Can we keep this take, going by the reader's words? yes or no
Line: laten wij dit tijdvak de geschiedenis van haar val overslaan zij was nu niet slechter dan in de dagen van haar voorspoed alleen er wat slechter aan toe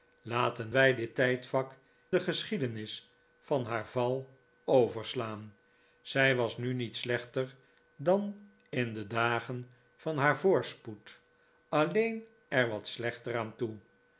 yes